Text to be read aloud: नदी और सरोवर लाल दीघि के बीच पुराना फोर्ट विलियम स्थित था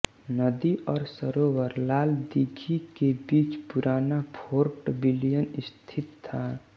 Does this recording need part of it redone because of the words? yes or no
no